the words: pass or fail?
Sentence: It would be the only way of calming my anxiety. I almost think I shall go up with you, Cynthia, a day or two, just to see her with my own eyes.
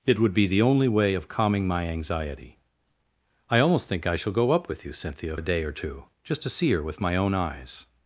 pass